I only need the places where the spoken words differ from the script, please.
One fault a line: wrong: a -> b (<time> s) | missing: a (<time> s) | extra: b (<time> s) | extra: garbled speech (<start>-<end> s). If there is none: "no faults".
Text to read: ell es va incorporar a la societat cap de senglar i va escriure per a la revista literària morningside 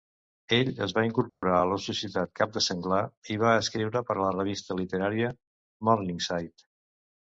no faults